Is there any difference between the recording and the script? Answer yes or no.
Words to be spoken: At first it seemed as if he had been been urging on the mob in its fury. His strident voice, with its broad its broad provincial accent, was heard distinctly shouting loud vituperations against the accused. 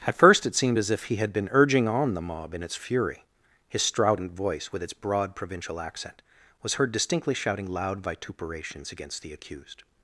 yes